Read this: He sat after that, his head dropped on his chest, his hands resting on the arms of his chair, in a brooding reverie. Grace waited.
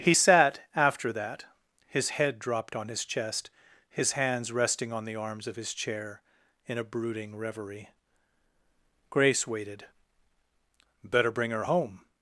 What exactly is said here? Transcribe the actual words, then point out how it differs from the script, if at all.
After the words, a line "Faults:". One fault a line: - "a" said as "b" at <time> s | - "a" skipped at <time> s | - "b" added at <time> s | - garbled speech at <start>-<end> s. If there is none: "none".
He sat after that, his head dropped on his chest, his hands resting on the arms of his chair, in a brooding reverie. Grace waited. "Better bring her home
Faults:
- "Better bring her home" added at 11.0 s